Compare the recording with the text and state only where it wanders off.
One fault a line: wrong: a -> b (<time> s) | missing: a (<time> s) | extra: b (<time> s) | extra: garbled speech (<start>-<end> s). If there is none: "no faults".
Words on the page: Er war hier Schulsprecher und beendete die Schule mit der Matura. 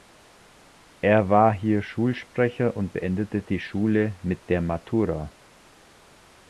no faults